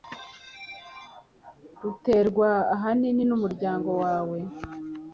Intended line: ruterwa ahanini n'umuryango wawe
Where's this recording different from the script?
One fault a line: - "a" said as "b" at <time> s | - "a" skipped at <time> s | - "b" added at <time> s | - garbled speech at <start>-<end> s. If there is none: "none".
none